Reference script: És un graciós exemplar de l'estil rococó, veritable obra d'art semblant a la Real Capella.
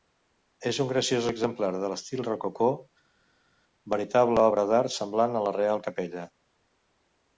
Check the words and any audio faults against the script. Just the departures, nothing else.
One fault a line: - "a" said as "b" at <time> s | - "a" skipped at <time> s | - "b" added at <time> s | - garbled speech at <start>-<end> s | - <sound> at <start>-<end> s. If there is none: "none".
none